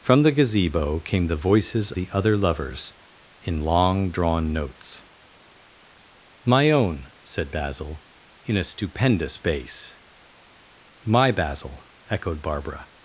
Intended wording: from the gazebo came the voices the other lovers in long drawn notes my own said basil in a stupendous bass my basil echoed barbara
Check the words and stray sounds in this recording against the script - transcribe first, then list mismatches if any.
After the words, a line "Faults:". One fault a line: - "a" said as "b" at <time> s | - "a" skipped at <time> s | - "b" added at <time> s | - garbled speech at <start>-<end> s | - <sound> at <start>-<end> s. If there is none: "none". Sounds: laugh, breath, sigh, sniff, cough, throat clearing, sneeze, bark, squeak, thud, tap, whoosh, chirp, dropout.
from the gazebo came the voices the other lovers in long drawn notes my own said basil in a stupendous bass my basil echoed barbara
Faults:
none